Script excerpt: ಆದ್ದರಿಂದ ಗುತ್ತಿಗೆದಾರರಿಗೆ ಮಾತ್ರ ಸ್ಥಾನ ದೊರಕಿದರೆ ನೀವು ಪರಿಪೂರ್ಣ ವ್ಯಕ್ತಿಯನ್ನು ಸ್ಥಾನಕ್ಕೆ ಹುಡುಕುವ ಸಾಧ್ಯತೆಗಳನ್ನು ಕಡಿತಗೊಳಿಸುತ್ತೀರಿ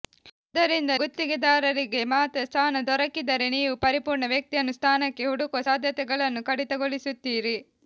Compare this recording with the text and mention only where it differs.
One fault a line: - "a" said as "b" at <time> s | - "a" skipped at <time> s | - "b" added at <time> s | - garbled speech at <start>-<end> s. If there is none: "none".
none